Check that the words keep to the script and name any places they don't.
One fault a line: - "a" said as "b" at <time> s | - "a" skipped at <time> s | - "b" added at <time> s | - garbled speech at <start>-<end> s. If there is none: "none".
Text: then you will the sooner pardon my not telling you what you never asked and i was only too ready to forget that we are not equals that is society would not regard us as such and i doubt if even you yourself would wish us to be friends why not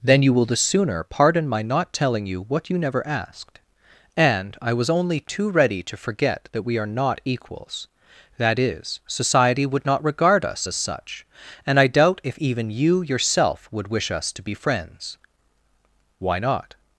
none